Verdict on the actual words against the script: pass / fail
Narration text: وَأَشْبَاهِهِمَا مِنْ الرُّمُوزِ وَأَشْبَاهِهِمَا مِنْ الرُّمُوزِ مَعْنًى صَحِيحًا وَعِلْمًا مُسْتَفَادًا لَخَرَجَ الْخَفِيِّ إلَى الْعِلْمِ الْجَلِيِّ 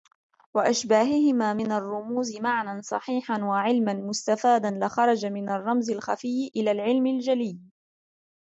fail